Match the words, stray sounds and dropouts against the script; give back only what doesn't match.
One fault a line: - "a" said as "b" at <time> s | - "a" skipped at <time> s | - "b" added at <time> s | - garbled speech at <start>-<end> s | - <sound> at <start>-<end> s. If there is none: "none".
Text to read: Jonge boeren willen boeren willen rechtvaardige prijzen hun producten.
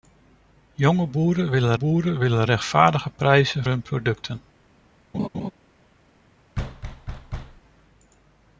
- laugh at 5.1-5.5 s
- thud at 6.5-7.6 s